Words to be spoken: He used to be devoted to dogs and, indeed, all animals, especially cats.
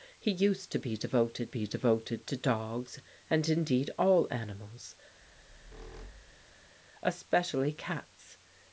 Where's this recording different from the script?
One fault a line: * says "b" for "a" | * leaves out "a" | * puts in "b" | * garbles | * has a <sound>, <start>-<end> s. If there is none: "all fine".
* puts in "be devoted"
* has a squeak, 5.2-6.8 s